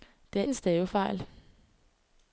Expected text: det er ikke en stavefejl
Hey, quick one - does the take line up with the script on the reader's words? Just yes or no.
no